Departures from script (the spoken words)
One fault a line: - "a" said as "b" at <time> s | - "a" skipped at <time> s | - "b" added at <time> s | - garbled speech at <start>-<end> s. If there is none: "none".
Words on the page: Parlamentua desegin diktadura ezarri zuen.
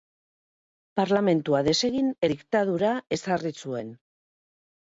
none